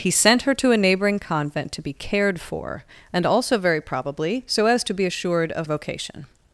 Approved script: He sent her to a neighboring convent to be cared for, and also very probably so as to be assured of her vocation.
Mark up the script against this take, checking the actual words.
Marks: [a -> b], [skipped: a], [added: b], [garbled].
He sent her to a neighboring convent to be cared for, and also very probably so as to be assured of [skipped: her] vocation.